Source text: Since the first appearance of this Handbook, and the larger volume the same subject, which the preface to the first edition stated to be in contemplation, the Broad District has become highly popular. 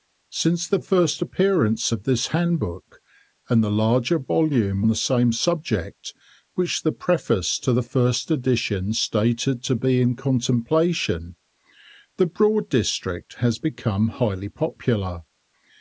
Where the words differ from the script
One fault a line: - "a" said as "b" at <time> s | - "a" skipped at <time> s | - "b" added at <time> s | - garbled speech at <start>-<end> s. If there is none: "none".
none